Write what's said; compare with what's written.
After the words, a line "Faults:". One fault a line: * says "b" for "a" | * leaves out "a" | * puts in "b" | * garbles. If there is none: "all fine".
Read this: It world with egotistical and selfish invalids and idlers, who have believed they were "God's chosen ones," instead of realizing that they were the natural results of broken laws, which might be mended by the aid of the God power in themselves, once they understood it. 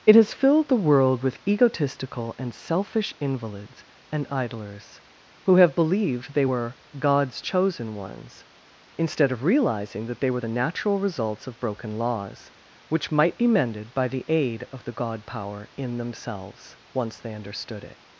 It has filled the world with egotistical and selfish invalids and idlers, who have believed they were "God's chosen ones," instead of realizing that they were the natural results of broken laws, which might be mended by the aid of the God power in themselves, once they understood it.
Faults:
* puts in "has filled the"